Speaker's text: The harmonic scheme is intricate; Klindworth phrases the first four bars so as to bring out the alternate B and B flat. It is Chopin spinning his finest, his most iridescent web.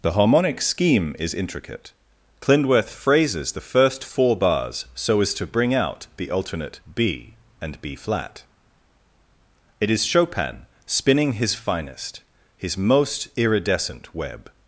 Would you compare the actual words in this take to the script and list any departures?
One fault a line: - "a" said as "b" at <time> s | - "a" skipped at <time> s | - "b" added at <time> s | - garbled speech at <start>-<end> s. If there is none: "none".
none